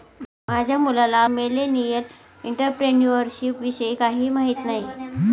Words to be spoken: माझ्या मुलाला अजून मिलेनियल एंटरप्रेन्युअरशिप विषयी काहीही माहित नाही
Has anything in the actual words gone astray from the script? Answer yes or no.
yes